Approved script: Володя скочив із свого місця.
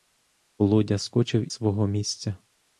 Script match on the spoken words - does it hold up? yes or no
no